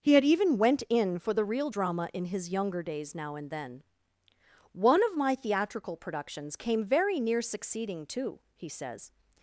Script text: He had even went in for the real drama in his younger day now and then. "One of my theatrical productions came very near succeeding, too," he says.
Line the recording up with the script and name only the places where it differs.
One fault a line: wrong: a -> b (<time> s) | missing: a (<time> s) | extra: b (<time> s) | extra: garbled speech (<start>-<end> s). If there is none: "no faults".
wrong: day -> days (2.8 s)